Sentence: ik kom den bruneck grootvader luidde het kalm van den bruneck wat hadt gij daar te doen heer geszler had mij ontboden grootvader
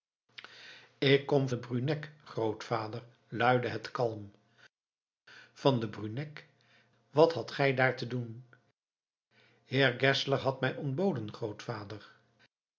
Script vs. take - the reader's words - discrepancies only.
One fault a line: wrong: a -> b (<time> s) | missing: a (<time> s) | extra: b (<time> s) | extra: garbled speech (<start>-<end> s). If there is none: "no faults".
no faults